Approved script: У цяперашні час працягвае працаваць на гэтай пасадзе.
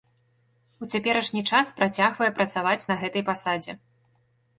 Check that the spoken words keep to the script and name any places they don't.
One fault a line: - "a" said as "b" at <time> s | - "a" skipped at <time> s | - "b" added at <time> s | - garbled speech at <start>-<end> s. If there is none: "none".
none